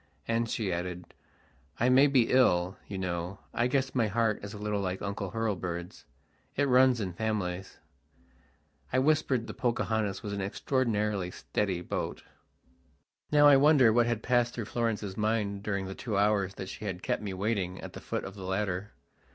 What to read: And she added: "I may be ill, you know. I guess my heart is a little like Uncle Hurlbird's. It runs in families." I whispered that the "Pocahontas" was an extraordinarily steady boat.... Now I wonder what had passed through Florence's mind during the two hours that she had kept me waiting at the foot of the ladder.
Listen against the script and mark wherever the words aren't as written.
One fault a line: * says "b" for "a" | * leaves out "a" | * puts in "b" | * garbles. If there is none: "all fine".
* leaves out "that"